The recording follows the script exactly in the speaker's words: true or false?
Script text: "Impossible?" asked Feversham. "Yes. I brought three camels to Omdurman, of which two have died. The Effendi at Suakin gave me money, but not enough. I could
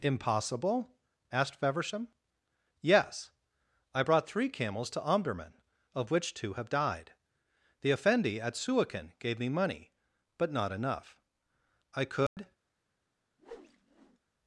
true